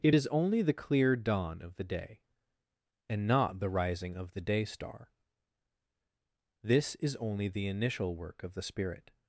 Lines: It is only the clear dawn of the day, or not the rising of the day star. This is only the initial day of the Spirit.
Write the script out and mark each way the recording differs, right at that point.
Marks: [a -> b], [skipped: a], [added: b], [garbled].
It is only the clear dawn of the day, [or -> and] not the rising of the day star. This is only the initial [day -> work] of the Spirit.